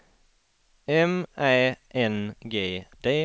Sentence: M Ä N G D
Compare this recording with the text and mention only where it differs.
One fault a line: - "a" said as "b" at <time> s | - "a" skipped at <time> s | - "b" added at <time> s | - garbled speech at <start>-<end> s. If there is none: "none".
none